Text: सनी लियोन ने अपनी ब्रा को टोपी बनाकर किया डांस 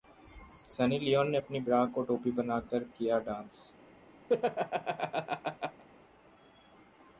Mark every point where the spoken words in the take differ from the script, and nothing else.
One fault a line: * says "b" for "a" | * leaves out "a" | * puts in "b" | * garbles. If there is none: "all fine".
all fine